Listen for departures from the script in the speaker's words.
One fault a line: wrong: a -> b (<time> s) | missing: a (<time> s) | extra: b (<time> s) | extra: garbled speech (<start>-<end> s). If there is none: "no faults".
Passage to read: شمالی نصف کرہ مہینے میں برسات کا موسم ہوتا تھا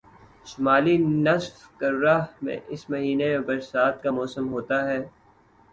extra: میں اس (2.4 s)
wrong: تھا -> ہے (4.9 s)